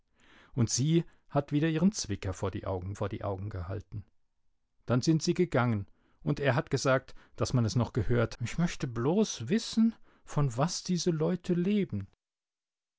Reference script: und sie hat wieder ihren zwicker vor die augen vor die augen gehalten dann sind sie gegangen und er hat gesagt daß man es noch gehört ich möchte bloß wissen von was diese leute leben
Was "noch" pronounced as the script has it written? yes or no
yes